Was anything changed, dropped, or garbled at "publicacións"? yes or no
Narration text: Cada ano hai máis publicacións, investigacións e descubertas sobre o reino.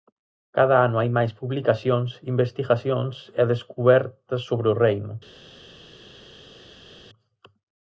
no